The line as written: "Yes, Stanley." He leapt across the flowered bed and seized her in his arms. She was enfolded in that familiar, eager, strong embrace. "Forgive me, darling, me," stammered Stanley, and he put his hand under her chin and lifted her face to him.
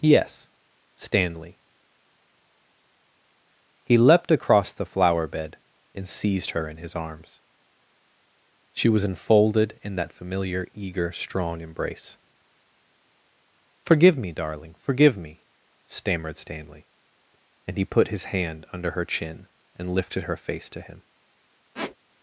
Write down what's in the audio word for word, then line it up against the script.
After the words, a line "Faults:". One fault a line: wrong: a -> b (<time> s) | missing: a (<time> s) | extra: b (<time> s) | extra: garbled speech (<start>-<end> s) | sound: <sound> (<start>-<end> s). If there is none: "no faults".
"Yes, Stanley." He leapt across the flower bed and seized her in his arms. She was enfolded in that familiar, eager, strong embrace. "Forgive me, darling, forgive me," stammered Stanley, and he put his hand under her chin and lifted her face to him.
Faults:
wrong: flowered -> flower (4.8 s)
extra: forgive (14.8 s)
sound: squeak (21.7-22.0 s)